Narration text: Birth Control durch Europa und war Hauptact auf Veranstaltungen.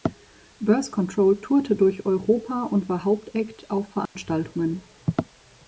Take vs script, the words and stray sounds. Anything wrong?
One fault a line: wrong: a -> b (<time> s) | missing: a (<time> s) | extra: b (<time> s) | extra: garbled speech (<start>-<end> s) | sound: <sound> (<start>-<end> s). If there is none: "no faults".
extra: tourte (1.4 s)
sound: dropout (4.1-4.2 s)